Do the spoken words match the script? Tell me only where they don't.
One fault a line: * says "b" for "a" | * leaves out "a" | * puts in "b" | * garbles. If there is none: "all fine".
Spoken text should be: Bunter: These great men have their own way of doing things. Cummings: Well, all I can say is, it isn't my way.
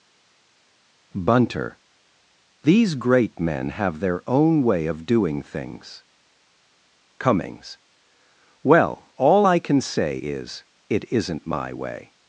all fine